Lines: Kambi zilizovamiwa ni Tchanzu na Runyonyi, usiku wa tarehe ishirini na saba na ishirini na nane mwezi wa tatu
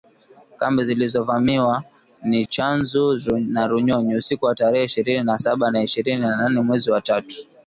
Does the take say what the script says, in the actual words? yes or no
yes